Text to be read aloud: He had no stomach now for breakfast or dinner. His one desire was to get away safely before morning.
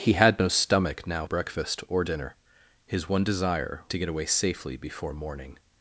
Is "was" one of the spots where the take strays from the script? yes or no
yes